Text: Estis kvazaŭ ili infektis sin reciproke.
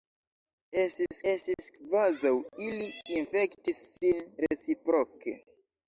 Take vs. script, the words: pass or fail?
fail